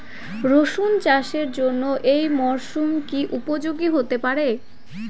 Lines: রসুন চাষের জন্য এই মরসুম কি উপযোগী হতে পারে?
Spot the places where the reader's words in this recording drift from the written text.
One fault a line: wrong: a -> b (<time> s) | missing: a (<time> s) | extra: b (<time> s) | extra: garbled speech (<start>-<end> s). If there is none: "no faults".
no faults